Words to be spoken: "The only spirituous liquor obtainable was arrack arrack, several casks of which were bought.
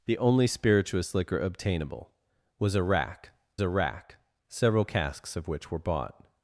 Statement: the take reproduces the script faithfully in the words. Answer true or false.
true